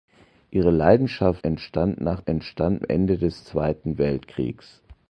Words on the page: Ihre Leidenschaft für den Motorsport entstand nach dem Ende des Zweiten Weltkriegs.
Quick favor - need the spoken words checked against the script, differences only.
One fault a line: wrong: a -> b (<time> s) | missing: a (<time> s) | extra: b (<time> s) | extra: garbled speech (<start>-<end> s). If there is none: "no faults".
missing: für den Motorsport (1.4 s)
wrong: dem -> entstand (2.2 s)